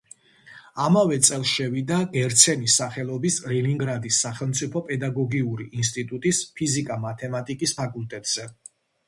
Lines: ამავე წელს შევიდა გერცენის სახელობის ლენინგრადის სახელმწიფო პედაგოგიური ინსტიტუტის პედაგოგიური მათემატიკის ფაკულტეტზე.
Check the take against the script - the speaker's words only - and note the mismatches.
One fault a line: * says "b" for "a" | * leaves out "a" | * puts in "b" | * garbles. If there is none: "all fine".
* says "ფიზიკა" for "პედაგოგიური"